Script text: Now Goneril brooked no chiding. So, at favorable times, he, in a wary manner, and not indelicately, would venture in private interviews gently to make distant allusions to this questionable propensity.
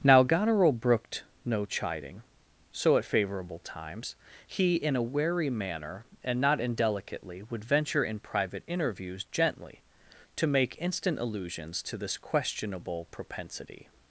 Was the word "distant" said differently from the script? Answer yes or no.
yes